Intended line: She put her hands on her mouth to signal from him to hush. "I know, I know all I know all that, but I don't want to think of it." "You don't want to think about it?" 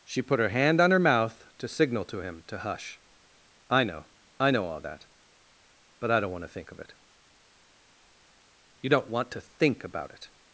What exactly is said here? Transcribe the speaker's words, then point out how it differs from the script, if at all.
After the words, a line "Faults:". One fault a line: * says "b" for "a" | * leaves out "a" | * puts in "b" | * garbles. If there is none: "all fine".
She put her hand on her mouth to signal to him to hush. "I know, I know all that, but I don't want to think of it." "You don't want to think about it?"
Faults:
* says "hand" for "hands"
* says "to" for "from"
* leaves out "I know all"